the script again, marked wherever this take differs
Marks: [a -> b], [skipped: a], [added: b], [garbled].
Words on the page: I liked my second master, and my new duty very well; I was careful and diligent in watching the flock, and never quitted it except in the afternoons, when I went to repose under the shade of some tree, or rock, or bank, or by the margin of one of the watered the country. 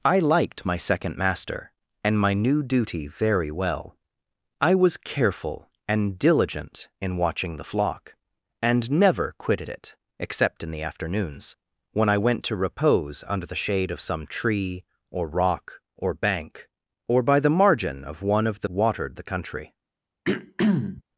I liked my second master, and my new duty very well; I was careful and diligent in watching the flock, and never quitted it except in the afternoons, when I went to repose under the shade of some tree, or rock, or bank, or by the margin of one of the watered the country.